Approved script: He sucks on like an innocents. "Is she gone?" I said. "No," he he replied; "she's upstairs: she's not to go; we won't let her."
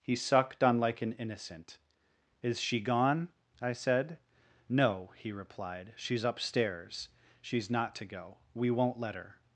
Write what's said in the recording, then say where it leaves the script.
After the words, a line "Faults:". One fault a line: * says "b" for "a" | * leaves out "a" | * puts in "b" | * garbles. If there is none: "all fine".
He sucked on like an innocent. "Is she gone?" I said. "No," he replied; "she's upstairs: she's not to go; we won't let her."
Faults:
* says "sucked" for "sucks"
* says "innocent" for "innocents"
* leaves out "he"